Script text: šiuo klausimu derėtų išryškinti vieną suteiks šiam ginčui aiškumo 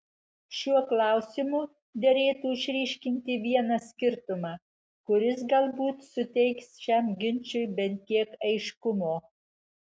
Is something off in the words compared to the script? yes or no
yes